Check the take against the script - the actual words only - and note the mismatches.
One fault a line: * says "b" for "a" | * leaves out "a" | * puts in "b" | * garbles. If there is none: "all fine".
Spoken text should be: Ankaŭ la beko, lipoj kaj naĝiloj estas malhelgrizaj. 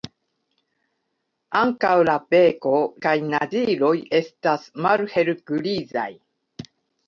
* leaves out "lipoj"